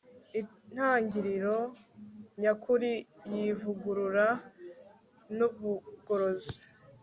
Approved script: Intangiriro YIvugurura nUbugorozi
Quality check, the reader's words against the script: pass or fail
fail